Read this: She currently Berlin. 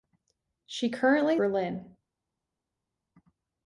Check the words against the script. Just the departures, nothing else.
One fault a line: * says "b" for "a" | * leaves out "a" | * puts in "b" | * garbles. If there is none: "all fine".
all fine